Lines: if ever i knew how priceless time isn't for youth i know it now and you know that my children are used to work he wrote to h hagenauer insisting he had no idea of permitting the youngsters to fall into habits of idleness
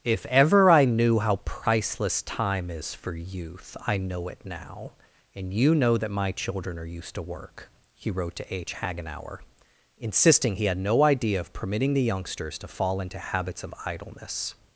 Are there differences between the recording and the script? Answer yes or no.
yes